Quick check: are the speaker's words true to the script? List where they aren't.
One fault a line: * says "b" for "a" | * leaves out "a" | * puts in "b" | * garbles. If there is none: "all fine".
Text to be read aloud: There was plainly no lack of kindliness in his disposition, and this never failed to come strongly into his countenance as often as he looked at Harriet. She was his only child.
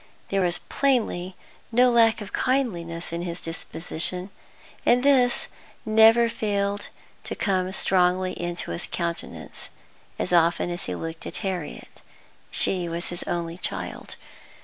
all fine